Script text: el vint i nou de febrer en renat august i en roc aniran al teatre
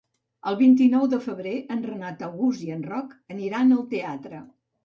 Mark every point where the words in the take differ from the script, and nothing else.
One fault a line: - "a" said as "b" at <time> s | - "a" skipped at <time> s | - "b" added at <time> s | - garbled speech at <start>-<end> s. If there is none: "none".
none